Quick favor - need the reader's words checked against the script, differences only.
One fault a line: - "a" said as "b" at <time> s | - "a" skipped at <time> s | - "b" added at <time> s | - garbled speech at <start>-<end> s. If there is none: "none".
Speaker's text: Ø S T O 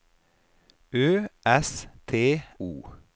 none